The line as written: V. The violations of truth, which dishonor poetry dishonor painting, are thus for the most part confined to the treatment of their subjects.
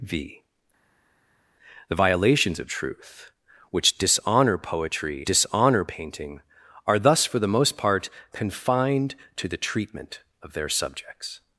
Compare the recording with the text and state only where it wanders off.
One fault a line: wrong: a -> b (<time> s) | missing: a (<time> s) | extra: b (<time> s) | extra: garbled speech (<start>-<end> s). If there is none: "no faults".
no faults